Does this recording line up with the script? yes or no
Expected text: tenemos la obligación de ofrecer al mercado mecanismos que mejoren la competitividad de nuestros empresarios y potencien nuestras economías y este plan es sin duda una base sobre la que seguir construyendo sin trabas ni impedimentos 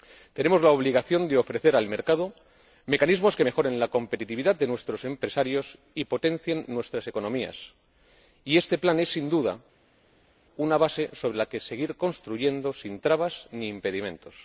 yes